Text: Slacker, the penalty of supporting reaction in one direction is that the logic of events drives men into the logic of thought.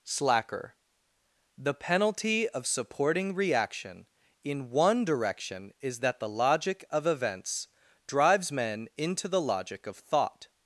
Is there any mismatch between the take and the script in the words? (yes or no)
no